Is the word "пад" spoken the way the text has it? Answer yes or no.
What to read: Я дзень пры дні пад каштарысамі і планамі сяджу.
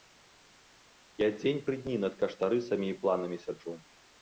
no